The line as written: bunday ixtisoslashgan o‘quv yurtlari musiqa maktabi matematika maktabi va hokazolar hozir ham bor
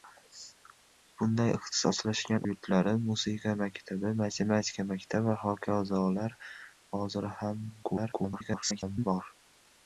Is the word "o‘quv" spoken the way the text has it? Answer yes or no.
no